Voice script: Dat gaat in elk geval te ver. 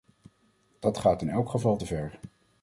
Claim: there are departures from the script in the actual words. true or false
false